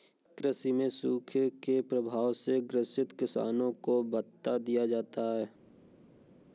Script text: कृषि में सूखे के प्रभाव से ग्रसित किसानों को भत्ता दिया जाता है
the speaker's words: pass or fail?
pass